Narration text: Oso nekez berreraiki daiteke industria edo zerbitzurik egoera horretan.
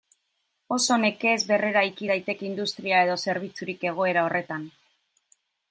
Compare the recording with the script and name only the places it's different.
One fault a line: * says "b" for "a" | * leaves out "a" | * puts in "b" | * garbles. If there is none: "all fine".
all fine